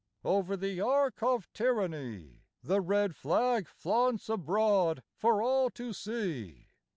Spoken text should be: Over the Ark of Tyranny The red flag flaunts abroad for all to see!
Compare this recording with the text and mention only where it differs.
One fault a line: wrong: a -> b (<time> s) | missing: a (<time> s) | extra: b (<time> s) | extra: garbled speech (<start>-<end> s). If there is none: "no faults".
no faults